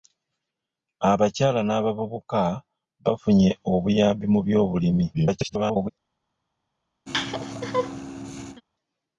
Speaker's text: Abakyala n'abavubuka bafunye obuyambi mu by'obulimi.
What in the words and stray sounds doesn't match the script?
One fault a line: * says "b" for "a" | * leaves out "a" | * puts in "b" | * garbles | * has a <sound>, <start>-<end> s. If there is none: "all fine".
* garbles
* has a laugh, 7.1-8.6 s